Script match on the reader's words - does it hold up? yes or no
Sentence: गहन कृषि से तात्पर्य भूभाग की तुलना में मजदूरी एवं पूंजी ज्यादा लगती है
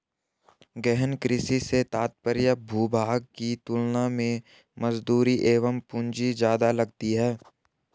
yes